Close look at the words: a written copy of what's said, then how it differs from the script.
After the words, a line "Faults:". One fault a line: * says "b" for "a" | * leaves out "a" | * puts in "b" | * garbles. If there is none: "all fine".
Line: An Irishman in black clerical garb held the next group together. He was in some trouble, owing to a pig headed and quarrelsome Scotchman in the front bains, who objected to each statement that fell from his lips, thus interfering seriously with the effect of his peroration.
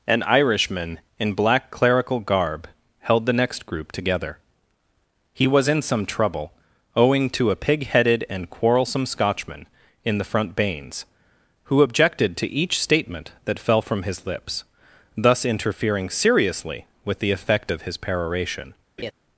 An Irishman in black clerical garb held the next group together. He was in some trouble, owing to a pig headed and quarrelsome Scotchman in the front bains, who objected to each statement that fell from his lips, thus interfering seriously with the effect of his peroration.
Faults:
all fine